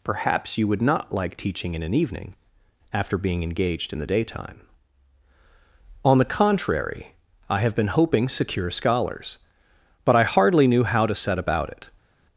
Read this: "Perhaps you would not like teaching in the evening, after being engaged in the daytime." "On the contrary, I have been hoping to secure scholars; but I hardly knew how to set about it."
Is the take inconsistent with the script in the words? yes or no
yes